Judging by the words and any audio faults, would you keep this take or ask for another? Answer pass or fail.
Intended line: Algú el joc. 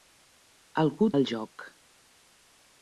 pass